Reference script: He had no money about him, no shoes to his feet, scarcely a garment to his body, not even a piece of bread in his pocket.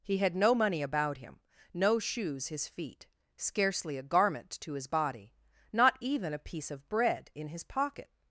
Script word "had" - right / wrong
right